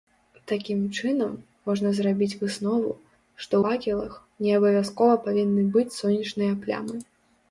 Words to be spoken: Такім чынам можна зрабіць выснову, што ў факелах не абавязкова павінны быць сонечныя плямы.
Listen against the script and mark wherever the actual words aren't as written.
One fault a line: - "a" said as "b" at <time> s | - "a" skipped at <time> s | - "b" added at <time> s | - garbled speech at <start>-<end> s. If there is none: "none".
- "ў" skipped at 3.5 s